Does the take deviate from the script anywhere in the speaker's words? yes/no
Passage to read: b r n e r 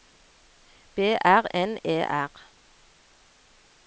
no